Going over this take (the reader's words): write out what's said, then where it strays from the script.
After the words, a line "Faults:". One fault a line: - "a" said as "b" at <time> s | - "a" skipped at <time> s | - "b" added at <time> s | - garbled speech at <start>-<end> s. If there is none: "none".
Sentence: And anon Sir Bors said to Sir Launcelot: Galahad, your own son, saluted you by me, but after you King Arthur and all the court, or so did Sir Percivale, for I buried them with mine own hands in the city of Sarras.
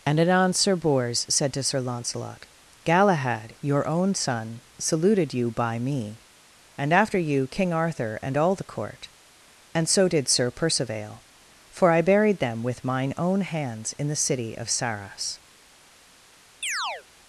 And anon Sir Bors said to Sir Launcelot: Galahad, your own son, saluted you by me, and after you King Arthur and all the court, and so did Sir Percivale, for I buried them with mine own hands in the city of Sarras.
Faults:
- "but" said as "and" at 6.8 s
- "or" said as "and" at 9.8 s